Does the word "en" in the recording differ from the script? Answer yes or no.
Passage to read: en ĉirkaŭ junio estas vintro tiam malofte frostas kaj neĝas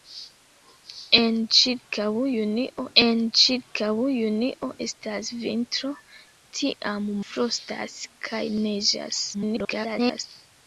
no